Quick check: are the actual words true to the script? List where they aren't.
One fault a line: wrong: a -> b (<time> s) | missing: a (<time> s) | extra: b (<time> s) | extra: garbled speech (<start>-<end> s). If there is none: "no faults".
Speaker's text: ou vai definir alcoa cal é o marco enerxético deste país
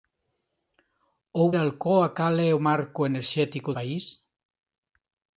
missing: vai definir (1.5 s)
missing: deste (3.7 s)